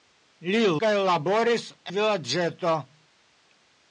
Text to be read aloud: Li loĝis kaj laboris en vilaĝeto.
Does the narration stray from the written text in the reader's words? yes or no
yes